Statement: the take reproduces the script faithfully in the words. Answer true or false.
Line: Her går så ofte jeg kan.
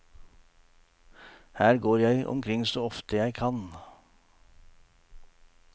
false